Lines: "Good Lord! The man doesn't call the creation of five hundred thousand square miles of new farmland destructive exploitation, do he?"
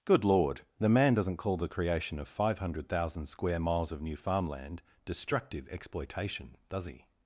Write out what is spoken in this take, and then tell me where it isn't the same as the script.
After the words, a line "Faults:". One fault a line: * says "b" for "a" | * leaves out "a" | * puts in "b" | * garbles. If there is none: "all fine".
"Good Lord! The man doesn't call the creation of five hundred thousand square miles of new farmland destructive exploitation, does he?"
Faults:
* says "does" for "do"